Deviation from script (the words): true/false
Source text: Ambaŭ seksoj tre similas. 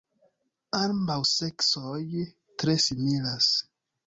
false